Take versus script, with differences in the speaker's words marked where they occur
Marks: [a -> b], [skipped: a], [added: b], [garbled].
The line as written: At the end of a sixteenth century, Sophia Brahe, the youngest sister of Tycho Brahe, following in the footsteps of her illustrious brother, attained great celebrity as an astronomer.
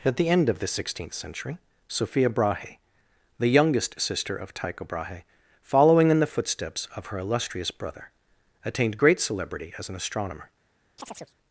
At the end of [a -> the] sixteenth century, Sophia Brahe, the youngest sister of Tycho Brahe, following in the footsteps of her illustrious brother, attained great celebrity as an astronomer.